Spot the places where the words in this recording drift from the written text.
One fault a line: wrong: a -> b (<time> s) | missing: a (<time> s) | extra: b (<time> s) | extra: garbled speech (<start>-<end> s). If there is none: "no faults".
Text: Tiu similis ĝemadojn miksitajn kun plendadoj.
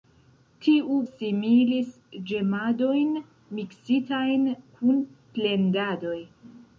no faults